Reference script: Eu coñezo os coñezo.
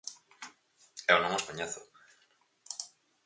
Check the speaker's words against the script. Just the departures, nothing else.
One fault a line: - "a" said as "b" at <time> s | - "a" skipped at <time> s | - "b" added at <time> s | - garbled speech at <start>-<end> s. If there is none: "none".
- "coñezo" said as "non" at 1.2 s